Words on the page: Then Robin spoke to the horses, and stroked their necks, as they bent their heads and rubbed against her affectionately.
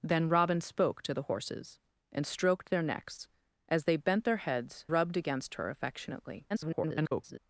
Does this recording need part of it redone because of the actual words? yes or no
yes